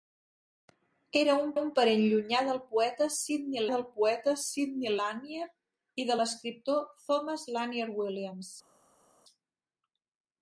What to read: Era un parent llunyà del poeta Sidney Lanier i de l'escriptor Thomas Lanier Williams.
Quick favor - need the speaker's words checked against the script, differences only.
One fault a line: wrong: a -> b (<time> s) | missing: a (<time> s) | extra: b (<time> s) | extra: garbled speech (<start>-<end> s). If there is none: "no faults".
extra: un (1.6 s)
extra: del poeta Sidney (3.7 s)